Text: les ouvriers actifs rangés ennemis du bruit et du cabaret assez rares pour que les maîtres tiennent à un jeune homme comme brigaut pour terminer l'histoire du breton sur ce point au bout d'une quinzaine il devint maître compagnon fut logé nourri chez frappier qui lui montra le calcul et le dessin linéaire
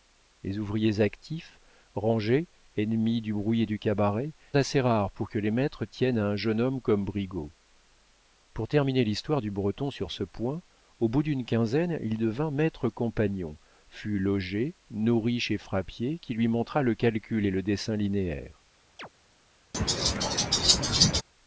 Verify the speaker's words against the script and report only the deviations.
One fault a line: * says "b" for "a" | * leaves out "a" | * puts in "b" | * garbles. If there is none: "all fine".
all fine